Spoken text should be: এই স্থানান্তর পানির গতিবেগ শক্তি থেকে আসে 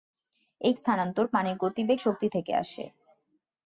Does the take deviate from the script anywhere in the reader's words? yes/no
no